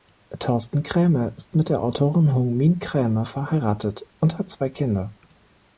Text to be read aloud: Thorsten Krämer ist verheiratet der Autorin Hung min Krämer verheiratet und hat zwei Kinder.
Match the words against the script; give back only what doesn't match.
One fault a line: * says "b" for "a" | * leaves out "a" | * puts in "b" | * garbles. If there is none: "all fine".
* says "mit" for "verheiratet"